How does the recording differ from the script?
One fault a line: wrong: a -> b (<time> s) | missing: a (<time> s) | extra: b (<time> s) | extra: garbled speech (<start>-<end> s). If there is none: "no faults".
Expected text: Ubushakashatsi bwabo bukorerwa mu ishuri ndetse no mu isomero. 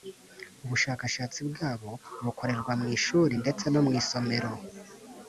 no faults